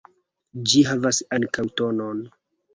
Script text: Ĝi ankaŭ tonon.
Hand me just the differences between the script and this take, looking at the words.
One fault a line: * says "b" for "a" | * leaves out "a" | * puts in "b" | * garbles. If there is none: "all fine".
* puts in "havas"